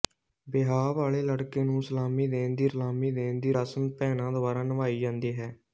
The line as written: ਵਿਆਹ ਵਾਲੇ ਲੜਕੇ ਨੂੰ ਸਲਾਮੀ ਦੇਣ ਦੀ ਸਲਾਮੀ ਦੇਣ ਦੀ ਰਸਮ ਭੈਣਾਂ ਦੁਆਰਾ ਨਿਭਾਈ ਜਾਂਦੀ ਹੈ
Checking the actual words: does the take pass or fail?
pass